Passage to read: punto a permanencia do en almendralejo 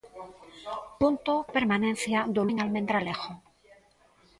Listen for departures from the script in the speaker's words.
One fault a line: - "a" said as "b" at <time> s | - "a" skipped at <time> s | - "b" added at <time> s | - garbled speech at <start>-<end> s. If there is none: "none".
none